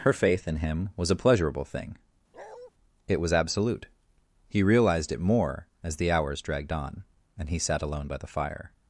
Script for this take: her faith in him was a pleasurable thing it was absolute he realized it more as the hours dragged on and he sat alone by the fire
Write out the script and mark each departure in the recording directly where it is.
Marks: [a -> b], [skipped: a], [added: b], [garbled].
her faith in him was a pleasurable thing it was absolute he realized it more as the hours dragged on and he sat alone by the fire